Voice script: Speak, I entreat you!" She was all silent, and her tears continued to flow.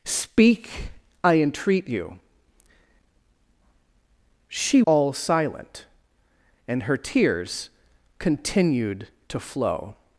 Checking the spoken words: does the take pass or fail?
fail